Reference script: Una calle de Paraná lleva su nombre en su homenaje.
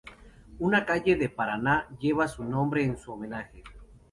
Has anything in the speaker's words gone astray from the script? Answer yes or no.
no